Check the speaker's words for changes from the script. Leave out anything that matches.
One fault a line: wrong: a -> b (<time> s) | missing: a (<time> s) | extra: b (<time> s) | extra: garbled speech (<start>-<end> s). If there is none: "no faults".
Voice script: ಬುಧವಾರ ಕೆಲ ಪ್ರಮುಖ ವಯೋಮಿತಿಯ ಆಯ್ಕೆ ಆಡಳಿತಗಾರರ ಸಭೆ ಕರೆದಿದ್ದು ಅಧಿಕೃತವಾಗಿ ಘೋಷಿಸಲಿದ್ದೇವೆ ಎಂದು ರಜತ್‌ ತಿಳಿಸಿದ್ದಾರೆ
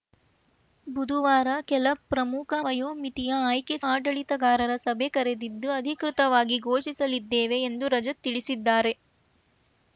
no faults